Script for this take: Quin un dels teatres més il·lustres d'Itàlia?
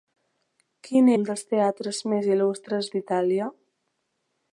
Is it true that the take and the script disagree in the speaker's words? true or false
false